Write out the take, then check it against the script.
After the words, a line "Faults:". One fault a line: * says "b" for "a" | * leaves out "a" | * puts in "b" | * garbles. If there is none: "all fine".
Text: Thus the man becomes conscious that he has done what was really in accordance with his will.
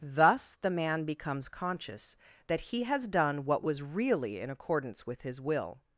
Thus the man becomes conscious that he has done what was really in accordance with his will.
Faults:
all fine